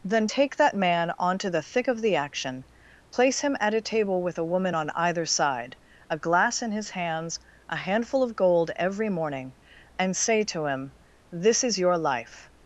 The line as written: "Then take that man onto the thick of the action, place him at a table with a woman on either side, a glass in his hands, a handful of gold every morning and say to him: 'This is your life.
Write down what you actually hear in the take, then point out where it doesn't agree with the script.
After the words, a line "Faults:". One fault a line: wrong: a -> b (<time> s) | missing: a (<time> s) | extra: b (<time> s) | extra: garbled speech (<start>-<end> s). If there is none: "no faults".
"Then take that man onto the thick of the action, place him at a table with a woman on either side, a glass in his hands, a handful of gold every morning and say to him: 'This is your life.
Faults:
no faults